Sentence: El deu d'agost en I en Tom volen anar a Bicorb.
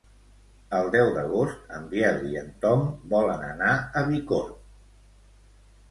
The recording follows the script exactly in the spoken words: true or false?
false